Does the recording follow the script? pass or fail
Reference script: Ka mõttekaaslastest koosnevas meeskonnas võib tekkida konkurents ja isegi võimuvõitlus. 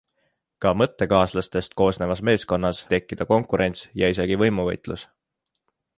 fail